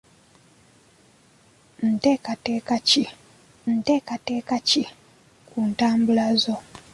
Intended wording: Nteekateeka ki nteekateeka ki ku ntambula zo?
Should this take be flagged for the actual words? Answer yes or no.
no